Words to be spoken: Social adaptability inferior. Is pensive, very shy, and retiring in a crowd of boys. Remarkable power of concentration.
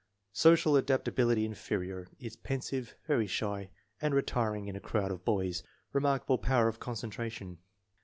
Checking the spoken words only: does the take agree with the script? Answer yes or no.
yes